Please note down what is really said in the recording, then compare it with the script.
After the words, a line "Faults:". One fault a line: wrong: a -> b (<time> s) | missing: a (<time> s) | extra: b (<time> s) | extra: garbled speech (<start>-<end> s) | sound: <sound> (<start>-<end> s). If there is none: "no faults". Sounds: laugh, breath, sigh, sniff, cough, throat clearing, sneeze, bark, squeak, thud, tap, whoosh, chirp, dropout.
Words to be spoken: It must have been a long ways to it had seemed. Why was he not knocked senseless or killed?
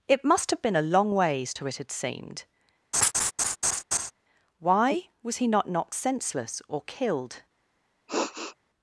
It must have been a long ways to it had seemed. Why was he not knocked senseless or killed?
Faults:
sound: laugh (2.9-4.1 s)
sound: sniff (8.1-8.6 s)